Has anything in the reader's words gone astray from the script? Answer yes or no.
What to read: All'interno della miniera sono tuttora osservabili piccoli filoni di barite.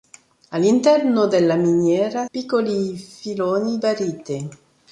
yes